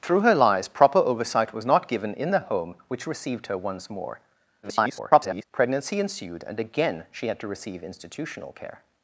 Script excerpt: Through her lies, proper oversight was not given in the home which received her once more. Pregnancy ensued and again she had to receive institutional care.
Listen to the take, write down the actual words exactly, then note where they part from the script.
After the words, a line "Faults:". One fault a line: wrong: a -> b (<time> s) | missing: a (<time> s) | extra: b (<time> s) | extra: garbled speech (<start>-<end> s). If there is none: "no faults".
Through her lies, proper oversight was not given in the home which received her once more. [garbled] Pregnancy ensued and again she had to receive institutional care.
Faults:
extra: garbled speech (4.6-5.4 s)